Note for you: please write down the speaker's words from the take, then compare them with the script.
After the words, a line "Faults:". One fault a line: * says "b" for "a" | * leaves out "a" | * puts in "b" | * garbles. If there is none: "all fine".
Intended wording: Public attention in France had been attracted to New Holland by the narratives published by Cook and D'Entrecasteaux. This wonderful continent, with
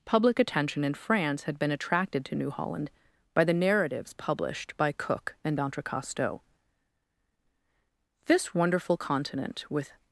Public attention in France had been attracted to New Holland by the narratives published by Cook and D'Entrecasteaux. This wonderful continent, with
Faults:
all fine